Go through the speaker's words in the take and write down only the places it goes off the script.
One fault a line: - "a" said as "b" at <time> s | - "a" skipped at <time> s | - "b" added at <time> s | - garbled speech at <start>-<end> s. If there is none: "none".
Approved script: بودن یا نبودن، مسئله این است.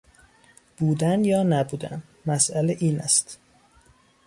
none